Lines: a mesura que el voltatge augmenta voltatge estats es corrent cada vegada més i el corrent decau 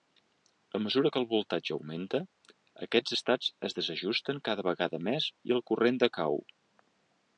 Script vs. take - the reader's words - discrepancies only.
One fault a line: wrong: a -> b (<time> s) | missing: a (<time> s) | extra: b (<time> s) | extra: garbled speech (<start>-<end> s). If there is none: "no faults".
wrong: voltatge -> aquests (2.9 s)
wrong: corrent -> desajusten (3.8 s)